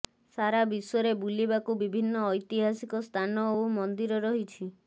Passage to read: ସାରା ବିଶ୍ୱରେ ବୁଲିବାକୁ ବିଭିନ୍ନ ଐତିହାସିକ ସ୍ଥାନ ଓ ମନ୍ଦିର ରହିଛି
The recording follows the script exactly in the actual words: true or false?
true